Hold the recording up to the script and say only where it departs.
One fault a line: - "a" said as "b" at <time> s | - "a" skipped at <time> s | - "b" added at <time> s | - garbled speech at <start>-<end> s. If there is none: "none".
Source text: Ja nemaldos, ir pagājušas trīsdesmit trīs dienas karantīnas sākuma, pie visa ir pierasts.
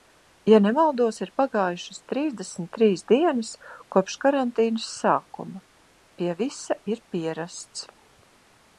- "kopš" added at 4.0 s